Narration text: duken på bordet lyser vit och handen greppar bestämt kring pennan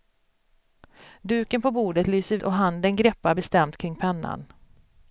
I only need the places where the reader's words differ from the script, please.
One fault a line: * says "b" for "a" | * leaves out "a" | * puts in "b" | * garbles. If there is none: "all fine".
* leaves out "vit"